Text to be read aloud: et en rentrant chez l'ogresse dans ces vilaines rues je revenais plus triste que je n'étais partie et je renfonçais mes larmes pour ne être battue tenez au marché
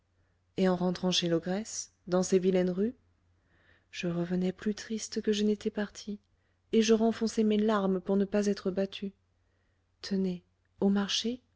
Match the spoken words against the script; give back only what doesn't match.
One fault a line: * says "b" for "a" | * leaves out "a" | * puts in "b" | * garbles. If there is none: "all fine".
* puts in "pas"